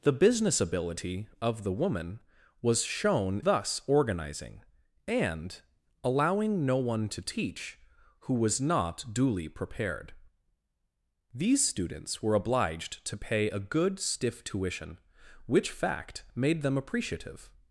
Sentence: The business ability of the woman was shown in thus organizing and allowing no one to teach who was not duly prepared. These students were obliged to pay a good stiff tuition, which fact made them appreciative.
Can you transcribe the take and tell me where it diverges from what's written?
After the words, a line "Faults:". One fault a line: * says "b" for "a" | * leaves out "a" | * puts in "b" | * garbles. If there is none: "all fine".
The business ability of the woman was shown thus organizing and allowing no one to teach who was not duly prepared. These students were obliged to pay a good stiff tuition, which fact made them appreciative.
Faults:
* leaves out "in"